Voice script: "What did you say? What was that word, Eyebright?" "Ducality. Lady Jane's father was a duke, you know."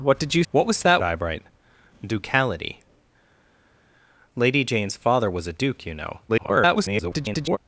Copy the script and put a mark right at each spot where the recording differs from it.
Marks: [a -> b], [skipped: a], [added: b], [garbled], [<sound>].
"What did you [skipped: say?] What was that [skipped: word,] Eyebright?" "Ducality. Lady Jane's father was a duke, you know." [garbled]